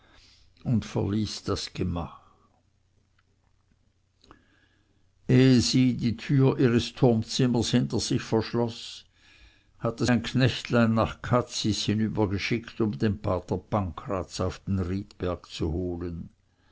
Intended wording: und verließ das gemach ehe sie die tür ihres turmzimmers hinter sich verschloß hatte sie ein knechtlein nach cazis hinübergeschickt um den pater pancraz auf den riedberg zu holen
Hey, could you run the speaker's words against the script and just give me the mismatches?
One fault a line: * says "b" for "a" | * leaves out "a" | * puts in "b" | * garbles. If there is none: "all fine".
* leaves out "sie"